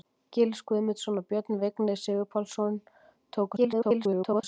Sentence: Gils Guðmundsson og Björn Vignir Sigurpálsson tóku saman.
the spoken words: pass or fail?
fail